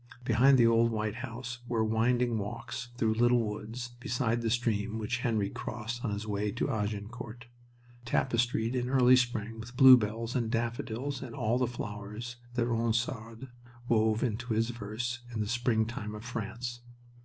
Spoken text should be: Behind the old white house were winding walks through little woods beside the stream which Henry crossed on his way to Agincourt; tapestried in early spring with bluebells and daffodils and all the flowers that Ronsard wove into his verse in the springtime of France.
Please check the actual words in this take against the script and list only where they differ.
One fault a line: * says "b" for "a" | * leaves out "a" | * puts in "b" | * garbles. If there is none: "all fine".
all fine